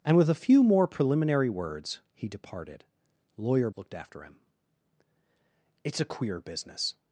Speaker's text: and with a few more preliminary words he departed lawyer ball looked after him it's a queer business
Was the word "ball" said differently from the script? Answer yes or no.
yes